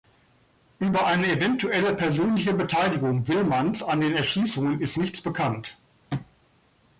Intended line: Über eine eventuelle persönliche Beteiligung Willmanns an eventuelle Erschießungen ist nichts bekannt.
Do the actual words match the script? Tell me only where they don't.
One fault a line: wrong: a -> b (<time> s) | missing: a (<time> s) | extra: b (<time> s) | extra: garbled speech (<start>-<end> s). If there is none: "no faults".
wrong: eventuelle -> den (4.0 s)